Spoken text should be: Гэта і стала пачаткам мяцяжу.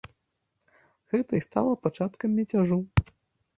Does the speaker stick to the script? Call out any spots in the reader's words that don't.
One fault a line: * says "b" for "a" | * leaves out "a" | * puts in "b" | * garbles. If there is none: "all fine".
all fine